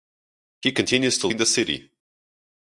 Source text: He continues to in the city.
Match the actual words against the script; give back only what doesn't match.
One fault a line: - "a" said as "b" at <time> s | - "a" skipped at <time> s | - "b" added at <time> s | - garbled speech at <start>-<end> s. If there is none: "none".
none